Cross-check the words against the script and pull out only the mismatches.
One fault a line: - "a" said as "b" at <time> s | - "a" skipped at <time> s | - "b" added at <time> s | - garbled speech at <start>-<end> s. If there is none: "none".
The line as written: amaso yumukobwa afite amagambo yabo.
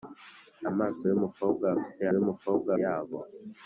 - "amagambo" said as "yumukobwa" at 2.2 s